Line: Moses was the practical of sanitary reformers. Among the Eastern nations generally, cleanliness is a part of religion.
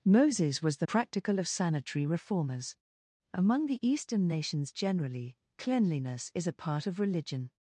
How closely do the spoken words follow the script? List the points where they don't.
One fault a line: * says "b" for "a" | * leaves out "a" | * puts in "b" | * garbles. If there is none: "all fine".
all fine